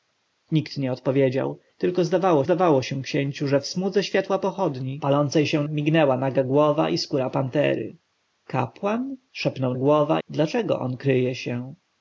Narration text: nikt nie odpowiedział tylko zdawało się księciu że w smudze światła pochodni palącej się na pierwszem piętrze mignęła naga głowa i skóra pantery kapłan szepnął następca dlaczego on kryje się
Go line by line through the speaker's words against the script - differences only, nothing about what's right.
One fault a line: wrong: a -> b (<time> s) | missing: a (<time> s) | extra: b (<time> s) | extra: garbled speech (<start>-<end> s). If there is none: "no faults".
extra: zdawało (2.4 s)
missing: na pierwszem piętrze (5.6 s)
wrong: następca -> głowa (9.7 s)